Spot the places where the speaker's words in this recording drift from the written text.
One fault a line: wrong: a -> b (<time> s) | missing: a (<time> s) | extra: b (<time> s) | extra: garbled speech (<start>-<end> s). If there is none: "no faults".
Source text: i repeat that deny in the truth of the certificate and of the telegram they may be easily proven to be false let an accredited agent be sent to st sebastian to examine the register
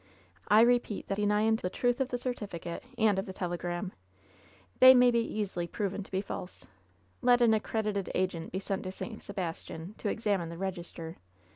no faults